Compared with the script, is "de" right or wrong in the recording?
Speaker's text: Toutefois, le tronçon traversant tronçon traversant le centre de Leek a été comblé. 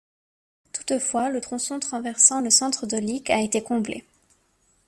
right